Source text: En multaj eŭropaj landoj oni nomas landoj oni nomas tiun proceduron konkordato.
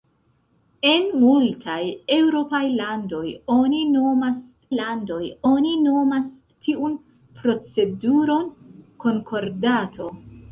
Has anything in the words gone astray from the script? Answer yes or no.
no